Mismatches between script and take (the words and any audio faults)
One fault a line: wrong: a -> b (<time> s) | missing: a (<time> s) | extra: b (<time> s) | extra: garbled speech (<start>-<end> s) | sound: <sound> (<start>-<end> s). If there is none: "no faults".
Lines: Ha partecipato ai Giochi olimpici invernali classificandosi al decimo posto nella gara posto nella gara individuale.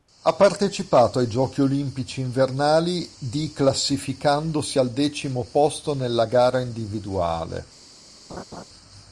extra: di (3.2 s)
missing: posto nella gara (6.6 s)
sound: laugh (8.3-8.6 s)